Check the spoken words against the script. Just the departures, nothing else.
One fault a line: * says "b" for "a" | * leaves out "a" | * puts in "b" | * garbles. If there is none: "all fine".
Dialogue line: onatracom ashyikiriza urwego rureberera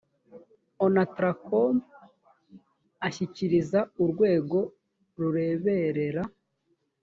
all fine